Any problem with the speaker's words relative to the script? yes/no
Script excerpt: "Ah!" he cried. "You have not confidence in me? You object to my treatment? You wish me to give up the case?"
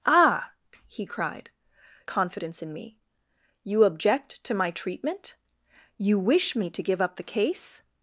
yes